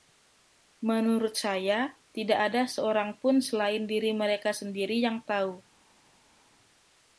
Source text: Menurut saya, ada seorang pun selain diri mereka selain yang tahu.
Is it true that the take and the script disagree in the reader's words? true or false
true